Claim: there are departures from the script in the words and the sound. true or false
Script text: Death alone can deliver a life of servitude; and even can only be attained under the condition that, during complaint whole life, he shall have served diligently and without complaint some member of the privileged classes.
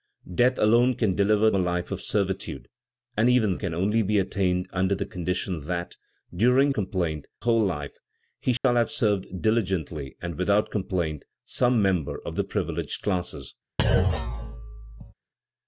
true